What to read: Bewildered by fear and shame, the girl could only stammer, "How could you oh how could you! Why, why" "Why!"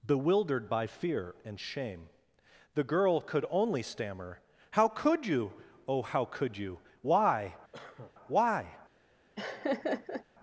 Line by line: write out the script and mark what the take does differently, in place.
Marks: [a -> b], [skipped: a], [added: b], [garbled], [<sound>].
Bewildered by fear and shame, the girl could only stammer, "How could you oh how could you! Why, [cough] why" [skipped: "Why!"] [laugh]